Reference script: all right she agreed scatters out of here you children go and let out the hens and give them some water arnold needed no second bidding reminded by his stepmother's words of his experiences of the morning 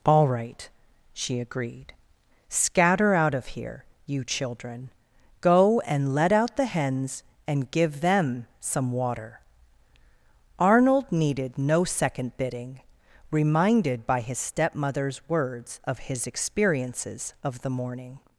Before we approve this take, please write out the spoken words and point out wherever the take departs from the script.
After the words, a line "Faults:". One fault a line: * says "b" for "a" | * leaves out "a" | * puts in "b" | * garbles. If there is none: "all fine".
all right she agreed scatter out of here you children go and let out the hens and give them some water arnold needed no second bidding reminded by his stepmother's words of his experiences of the morning
Faults:
* says "scatter" for "scatters"